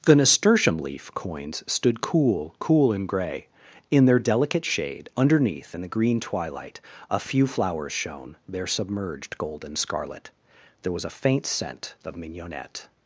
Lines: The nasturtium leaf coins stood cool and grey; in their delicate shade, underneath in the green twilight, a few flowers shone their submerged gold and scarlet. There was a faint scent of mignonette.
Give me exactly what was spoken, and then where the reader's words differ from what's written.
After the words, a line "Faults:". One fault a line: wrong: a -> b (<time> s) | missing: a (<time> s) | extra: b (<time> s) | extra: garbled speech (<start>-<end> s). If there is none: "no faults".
The nasturtium leaf coins stood cool cool and grey; in their delicate shade, underneath in the green twilight, a few flowers shone their submerged gold and scarlet. There was a faint scent of mignonette.
Faults:
extra: cool (2.6 s)